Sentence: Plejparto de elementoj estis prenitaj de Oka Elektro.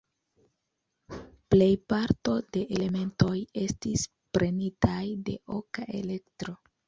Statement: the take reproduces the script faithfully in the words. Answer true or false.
true